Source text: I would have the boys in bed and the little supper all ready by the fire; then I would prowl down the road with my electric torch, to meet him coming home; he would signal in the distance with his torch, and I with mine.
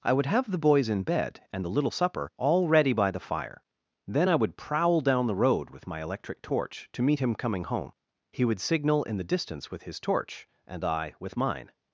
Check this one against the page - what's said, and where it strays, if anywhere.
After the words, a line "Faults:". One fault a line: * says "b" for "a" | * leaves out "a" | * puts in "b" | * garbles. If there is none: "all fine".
I would have the boys in bed and the little supper all ready by the fire; then I would prowl down the road with my electric torch, to meet him coming home; he would signal in the distance with his torch, and I with mine.
Faults:
all fine